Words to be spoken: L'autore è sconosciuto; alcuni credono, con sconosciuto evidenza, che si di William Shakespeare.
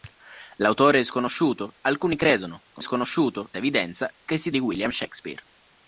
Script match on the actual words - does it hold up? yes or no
yes